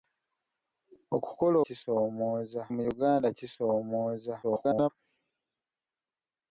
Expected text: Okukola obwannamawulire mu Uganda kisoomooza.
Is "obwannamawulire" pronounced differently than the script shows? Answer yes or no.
yes